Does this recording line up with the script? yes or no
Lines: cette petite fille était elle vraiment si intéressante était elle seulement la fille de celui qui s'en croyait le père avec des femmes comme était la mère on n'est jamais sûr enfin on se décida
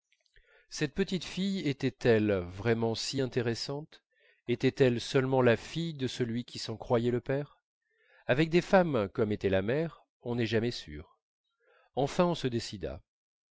yes